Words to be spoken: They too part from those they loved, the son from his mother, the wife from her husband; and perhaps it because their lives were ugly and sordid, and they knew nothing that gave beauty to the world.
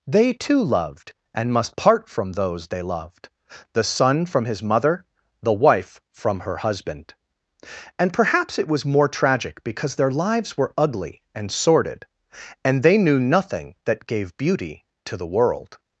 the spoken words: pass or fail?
fail